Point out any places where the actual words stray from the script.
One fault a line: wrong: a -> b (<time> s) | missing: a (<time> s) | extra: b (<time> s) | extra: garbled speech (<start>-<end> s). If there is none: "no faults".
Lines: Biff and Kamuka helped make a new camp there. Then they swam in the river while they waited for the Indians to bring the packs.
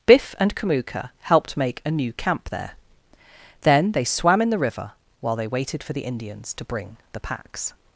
no faults